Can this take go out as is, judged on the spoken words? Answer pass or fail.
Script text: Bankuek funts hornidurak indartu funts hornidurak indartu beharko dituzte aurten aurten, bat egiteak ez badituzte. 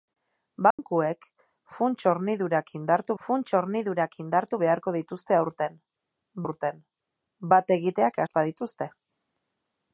pass